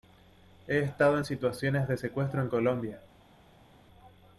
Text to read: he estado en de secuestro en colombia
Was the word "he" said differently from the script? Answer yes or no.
no